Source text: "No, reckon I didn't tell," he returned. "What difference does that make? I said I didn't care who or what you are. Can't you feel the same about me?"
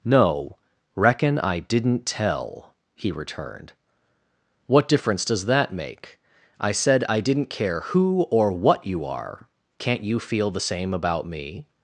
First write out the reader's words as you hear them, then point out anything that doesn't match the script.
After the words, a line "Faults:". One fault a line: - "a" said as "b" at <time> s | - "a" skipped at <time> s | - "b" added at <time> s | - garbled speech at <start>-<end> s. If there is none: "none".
"No, reckon I didn't tell," he returned. "What difference does that make? I said I didn't care who or what you are. Can't you feel the same about me?"
Faults:
none